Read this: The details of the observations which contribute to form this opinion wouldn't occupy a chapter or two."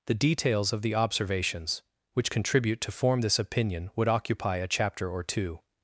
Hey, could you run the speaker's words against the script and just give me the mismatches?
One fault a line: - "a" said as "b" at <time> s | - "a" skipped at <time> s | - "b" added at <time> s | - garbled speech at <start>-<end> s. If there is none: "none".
- "wouldn't" said as "would" at 4.0 s